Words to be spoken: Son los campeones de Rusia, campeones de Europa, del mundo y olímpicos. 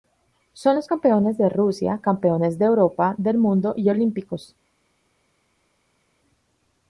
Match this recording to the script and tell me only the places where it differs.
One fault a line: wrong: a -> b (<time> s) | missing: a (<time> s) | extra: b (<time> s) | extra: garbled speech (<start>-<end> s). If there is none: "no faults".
no faults